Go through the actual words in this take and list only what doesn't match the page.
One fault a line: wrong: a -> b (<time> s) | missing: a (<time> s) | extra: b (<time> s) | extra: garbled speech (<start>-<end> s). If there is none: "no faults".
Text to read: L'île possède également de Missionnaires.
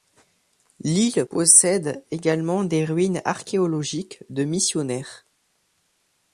extra: des ruines archéologiques (2.6 s)